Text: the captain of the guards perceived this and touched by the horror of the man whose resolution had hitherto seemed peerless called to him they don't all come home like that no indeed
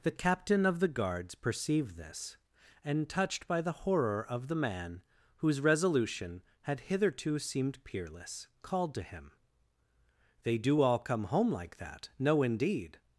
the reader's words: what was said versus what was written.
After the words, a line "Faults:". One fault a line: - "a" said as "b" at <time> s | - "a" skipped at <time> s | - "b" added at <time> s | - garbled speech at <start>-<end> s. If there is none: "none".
the captain of the guards perceived this and touched by the horror of the man whose resolution had hitherto seemed peerless called to him they do all come home like that no indeed
Faults:
- "don't" said as "do" at 10.6 s